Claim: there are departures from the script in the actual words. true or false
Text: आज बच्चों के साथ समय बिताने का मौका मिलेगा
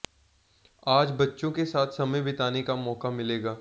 false